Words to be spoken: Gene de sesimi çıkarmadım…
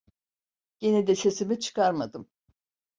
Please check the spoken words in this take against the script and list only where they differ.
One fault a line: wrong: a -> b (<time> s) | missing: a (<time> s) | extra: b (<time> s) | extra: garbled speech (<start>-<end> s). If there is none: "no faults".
no faults